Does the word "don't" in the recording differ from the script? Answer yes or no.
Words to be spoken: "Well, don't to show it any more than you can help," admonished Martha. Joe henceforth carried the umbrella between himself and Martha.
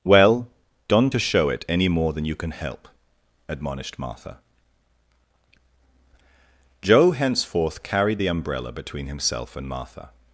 no